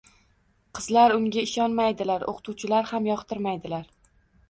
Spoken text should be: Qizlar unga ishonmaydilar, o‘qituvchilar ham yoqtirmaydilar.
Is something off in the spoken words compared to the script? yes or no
no